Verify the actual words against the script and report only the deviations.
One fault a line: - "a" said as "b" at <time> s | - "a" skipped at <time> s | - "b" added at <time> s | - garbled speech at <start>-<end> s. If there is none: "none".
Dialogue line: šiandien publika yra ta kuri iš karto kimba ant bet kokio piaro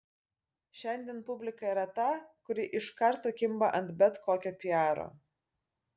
none